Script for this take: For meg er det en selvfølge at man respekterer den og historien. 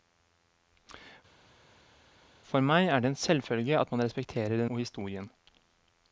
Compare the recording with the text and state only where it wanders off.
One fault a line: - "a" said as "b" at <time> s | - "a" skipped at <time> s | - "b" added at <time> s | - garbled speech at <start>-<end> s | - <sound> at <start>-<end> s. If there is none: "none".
none